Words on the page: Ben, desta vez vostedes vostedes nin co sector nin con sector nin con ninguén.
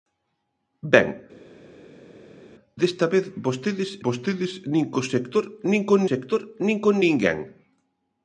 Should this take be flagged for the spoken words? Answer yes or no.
no